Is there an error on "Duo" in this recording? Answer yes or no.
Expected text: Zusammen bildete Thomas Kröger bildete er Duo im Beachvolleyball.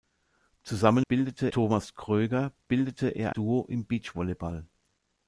no